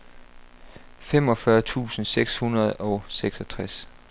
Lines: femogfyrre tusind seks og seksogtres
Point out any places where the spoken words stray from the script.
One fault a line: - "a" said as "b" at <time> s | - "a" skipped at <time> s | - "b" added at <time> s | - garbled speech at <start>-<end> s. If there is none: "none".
- "hundrede" added at 2.4 s